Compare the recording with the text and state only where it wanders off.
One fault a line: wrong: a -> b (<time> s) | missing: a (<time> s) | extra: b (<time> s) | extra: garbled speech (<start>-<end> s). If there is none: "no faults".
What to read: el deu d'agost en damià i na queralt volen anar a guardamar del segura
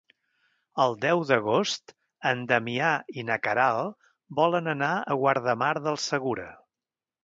no faults